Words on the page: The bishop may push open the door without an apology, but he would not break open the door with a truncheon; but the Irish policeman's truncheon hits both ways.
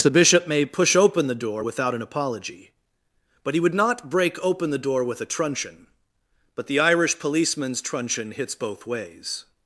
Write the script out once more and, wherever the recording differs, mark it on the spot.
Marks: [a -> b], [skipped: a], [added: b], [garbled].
The bishop may push open the door without an apology, but he would not break open the door with a truncheon; but the Irish policeman's truncheon hits both ways.